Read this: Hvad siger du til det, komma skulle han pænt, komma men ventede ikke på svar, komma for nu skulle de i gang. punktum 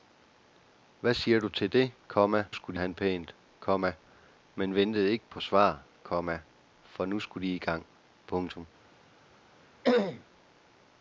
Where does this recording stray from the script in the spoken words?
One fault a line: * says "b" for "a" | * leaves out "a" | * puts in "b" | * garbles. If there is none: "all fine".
all fine